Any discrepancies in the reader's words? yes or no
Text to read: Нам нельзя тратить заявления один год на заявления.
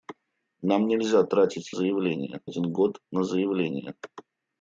no